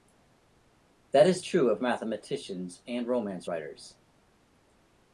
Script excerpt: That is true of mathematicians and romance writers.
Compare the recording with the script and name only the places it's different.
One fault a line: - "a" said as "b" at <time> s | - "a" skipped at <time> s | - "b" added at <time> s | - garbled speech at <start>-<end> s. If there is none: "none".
none